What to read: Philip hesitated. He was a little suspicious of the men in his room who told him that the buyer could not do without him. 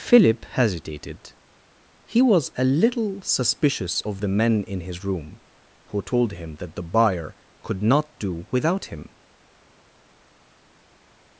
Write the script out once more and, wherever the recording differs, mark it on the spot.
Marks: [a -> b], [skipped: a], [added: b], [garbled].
Philip hesitated. He was a little suspicious of the men in his room who told him that the buyer could not do without him.